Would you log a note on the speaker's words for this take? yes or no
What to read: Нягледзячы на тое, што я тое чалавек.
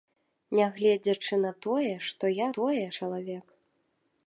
no